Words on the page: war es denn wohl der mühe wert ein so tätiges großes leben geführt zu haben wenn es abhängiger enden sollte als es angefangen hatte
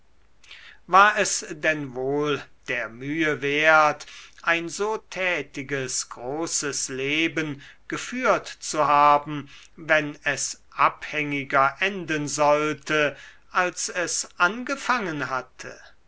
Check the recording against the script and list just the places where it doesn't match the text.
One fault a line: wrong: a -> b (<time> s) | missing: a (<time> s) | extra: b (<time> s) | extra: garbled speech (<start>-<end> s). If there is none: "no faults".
no faults